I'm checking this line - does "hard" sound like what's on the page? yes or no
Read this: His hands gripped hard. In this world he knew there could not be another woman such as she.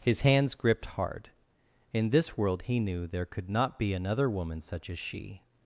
yes